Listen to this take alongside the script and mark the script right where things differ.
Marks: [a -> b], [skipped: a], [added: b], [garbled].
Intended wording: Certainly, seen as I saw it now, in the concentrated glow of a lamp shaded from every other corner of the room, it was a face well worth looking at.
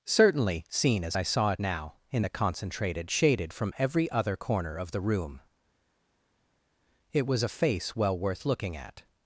Certainly, seen as I saw it now, in the concentrated [skipped: glow of a lamp] shaded from every other corner of the room, it was a face well worth looking at.